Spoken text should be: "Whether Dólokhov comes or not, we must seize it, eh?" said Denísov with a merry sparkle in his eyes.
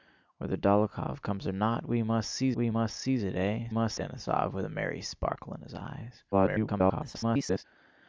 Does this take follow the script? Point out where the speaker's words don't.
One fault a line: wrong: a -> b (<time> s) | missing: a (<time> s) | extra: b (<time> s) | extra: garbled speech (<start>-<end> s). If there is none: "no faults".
extra: we must seize (2.5 s)
wrong: said -> must (3.7 s)
extra: garbled speech (6.3-7.6 s)